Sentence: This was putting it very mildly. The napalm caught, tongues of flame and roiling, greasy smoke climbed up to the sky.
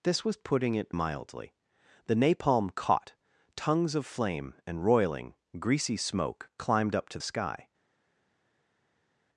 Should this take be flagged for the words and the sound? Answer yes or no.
yes